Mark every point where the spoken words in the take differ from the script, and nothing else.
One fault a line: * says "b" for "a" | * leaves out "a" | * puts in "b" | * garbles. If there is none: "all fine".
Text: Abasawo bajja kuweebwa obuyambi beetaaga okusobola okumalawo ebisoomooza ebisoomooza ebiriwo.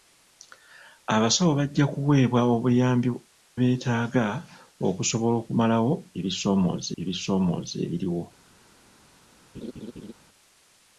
all fine